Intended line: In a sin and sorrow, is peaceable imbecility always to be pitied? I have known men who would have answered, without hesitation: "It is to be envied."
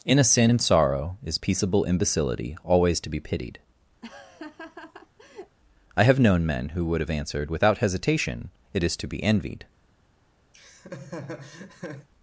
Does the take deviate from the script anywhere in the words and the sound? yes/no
yes